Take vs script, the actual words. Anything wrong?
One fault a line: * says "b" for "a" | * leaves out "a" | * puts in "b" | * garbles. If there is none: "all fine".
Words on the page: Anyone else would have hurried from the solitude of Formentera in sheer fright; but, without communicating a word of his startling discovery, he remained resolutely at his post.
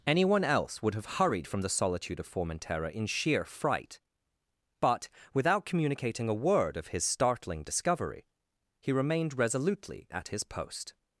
all fine